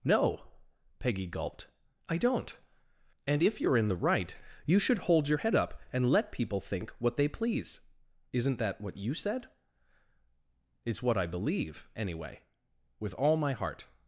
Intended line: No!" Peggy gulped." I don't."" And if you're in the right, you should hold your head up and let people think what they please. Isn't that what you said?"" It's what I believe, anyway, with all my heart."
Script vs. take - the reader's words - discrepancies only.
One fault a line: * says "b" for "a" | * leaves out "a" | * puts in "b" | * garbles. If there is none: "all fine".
all fine